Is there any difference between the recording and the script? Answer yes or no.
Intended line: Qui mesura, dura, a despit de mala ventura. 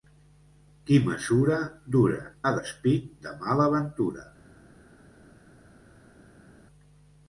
no